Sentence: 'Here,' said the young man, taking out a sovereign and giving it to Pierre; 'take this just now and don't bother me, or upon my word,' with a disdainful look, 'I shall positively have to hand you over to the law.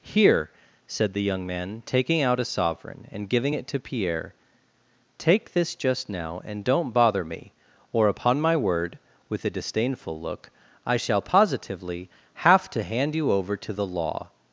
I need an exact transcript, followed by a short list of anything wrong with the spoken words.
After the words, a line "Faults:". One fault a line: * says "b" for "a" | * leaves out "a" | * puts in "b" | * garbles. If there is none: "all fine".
'Here,' said the young man, taking out a sovereign and giving it to Pierre; 'take this just now and don't bother me, or upon my word,' with a disdainful look, 'I shall positively have to hand you over to the law.
Faults:
all fine